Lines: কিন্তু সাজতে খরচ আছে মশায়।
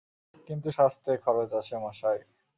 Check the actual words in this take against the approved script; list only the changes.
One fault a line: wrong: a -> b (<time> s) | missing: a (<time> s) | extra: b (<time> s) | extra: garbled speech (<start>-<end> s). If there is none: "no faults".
no faults